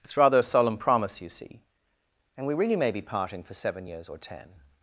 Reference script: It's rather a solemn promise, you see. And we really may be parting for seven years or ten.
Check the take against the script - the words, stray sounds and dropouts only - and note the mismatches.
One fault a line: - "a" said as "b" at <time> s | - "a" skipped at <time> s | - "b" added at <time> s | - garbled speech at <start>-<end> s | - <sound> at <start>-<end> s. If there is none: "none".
none